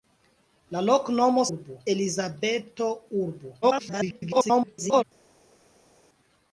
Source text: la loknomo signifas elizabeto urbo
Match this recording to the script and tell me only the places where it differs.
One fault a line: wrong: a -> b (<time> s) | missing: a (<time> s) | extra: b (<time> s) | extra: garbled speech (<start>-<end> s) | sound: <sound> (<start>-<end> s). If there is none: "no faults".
wrong: signifas -> urbo (1.5 s)
extra: garbled speech (3.6-5.0 s)